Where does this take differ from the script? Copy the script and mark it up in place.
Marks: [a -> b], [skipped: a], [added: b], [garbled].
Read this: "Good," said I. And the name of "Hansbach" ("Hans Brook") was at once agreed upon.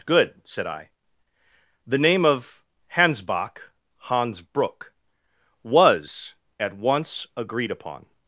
"Good," said I. [skipped: And] the name of "Hansbach" ("Hans Brook") was at once agreed upon.